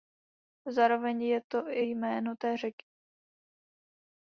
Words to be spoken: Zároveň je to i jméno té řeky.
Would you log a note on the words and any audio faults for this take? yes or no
no